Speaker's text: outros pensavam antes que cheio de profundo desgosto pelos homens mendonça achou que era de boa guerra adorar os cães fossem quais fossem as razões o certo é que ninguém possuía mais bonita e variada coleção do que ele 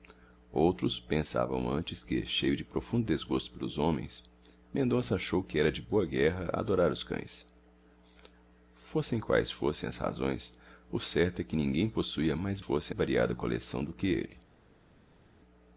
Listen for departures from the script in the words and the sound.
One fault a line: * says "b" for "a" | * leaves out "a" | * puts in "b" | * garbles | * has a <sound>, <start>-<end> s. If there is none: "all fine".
* says "fossem" for "bonita"